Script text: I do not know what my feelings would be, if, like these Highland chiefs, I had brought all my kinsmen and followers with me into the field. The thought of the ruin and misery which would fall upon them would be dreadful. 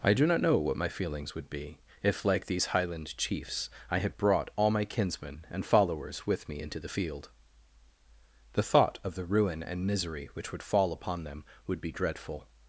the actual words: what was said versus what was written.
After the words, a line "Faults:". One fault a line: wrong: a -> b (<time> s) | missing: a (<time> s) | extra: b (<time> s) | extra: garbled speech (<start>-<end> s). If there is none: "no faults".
I do not know what my feelings would be, if, like these Highland chiefs, I had brought all my kinsmen and followers with me into the field. The thought of the ruin and misery which would fall upon them would be dreadful.
Faults:
no faults